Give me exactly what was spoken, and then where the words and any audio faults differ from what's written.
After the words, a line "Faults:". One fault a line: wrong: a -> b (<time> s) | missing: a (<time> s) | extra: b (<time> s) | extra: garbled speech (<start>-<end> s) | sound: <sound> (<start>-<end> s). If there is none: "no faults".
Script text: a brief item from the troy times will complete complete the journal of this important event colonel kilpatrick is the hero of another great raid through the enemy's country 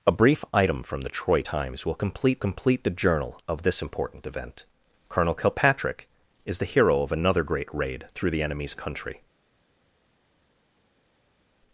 a brief item from the troy times will complete complete the journal of this important event colonel kilpatrick is the hero of another great raid through the enemy's country
Faults:
no faults